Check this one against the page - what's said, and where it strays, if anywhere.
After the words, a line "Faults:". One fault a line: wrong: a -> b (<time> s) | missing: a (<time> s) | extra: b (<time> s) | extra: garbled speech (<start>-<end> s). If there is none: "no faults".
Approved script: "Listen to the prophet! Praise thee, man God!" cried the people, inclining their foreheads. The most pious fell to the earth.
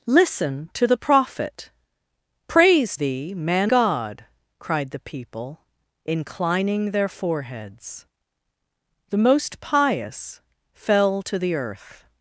"Listen to the prophet! Praise thee, man God!" cried the people, inclining their foreheads. The most pious fell to the earth.
Faults:
no faults